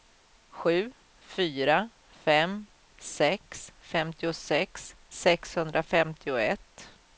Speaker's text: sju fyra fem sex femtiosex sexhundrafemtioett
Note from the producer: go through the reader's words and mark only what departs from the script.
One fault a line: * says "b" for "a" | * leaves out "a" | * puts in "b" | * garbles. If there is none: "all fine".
all fine